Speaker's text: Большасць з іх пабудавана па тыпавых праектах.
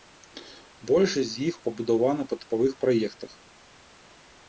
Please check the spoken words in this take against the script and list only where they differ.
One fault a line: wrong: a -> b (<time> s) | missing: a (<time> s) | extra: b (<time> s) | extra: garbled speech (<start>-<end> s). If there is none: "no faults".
no faults